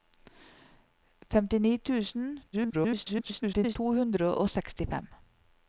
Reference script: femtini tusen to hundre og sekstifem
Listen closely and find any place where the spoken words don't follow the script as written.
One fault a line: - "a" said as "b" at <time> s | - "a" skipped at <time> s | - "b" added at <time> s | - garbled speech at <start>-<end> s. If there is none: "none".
- garbled speech at 2.5-3.8 s